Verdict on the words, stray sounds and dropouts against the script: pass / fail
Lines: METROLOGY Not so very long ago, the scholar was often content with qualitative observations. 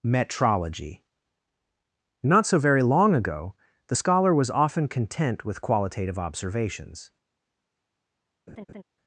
fail